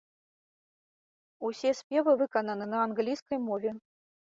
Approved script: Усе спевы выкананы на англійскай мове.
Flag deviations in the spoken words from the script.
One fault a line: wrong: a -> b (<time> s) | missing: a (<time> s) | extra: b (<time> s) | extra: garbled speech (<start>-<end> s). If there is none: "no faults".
no faults